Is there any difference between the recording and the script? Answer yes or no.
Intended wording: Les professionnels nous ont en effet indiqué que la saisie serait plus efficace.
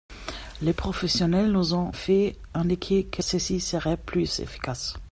yes